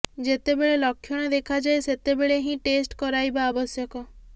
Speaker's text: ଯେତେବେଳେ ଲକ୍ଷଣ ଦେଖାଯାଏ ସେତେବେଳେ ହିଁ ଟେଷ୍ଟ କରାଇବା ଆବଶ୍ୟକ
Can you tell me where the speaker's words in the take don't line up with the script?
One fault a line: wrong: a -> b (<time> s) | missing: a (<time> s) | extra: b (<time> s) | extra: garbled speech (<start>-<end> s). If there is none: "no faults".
no faults